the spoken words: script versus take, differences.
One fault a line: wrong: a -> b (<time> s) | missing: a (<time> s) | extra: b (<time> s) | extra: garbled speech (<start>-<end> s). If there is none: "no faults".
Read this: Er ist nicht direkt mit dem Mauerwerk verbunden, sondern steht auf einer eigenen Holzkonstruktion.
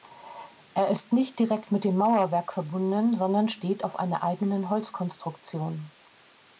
no faults